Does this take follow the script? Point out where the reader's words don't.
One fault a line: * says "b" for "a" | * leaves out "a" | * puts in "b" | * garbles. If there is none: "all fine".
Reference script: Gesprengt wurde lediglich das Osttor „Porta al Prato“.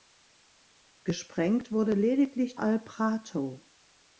* leaves out "das Osttor Porta"